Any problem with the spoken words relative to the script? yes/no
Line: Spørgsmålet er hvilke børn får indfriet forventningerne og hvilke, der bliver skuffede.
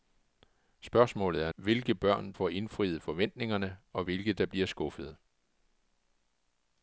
no